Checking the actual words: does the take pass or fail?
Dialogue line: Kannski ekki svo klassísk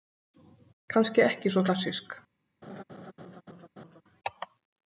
pass